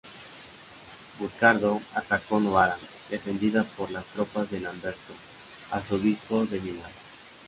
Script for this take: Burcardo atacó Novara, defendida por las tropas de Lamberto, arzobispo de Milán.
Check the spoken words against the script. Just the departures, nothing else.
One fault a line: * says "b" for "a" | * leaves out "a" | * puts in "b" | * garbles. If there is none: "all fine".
all fine